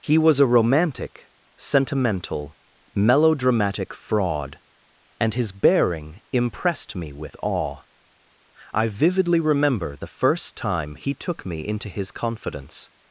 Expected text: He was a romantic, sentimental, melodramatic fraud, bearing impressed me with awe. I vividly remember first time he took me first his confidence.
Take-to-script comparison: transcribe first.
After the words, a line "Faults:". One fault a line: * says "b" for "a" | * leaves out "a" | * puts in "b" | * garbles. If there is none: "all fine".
He was a romantic, sentimental, melodramatic fraud, and his bearing impressed me with awe. I vividly remember the first time he took me into his confidence.
Faults:
* puts in "and his"
* puts in "the"
* says "into" for "first"